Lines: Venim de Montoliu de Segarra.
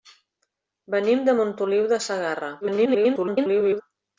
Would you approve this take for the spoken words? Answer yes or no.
no